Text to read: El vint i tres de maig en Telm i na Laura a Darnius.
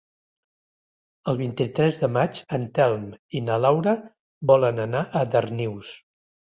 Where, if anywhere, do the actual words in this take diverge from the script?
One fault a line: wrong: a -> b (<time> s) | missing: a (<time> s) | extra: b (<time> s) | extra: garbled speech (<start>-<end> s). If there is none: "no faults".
extra: volen anar (4.5 s)